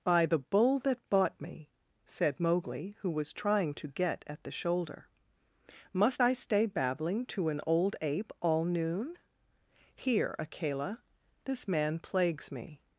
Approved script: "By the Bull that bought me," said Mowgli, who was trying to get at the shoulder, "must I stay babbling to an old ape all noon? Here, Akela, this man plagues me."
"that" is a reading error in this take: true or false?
false